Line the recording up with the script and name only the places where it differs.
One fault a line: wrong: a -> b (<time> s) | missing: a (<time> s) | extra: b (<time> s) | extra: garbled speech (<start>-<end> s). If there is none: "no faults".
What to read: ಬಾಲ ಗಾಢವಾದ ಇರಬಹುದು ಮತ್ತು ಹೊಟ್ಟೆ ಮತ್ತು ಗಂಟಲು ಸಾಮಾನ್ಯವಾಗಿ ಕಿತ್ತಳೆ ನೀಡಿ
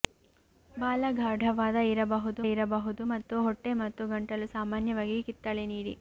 extra: ಇರಬಹುದು (2.5 s)